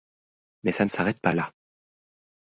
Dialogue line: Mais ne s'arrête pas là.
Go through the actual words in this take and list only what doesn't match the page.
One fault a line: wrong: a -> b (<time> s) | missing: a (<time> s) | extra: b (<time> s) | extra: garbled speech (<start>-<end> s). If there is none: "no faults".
extra: ça (0.7 s)